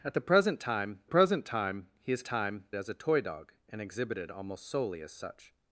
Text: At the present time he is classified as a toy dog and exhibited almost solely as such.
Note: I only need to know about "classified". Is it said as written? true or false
false